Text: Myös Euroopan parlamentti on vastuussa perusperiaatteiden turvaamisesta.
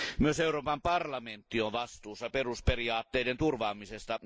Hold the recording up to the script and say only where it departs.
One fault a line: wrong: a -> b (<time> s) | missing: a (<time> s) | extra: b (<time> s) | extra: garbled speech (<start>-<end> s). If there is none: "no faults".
no faults